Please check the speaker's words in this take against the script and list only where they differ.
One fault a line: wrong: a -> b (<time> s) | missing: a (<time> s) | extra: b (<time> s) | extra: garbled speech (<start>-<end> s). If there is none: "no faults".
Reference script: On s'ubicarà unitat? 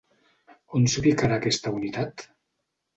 extra: aquesta (1.4 s)